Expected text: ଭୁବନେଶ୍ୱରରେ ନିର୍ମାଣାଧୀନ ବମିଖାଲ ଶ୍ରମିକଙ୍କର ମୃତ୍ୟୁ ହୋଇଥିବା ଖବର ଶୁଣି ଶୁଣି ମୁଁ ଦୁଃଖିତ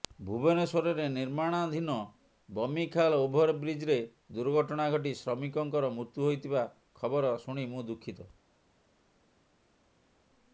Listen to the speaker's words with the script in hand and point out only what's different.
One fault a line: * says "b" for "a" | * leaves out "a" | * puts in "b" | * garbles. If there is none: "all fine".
* puts in "ଓଭରବ୍ରିଜ୍ରେ ଦୁର୍ଘଟଣା ଘଟି"
* leaves out "ଶୁଣି"